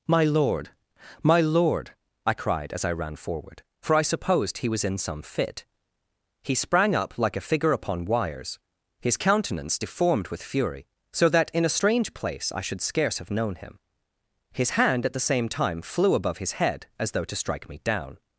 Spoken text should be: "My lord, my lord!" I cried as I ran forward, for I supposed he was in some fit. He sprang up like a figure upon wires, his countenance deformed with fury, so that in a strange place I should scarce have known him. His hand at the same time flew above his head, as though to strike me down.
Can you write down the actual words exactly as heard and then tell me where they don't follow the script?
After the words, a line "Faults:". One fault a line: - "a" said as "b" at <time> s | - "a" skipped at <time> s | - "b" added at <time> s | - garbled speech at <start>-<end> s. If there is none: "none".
"My lord, my lord!" I cried as I ran forward, for I supposed he was in some fit. He sprang up like a figure upon wires, his countenance deformed with fury, so that in a strange place I should scarce have known him. His hand at the same time flew above his head, as though to strike me down.
Faults:
none